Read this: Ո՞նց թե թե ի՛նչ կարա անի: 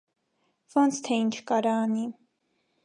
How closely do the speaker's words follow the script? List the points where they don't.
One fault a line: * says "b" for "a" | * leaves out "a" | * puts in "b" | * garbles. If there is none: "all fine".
* leaves out "թե"